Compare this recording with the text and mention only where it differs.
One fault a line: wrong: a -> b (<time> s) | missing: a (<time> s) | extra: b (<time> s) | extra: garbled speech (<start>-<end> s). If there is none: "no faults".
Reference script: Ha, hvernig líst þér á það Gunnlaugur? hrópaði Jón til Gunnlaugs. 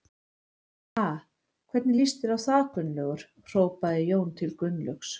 no faults